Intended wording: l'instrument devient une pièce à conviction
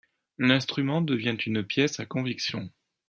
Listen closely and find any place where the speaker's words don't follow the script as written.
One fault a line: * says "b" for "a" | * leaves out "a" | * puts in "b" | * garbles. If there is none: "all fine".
all fine